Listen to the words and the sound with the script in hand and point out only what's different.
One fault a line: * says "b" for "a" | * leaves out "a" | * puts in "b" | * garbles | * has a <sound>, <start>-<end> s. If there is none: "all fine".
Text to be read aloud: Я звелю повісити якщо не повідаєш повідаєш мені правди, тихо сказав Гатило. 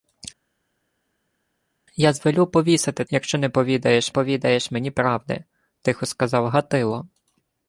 all fine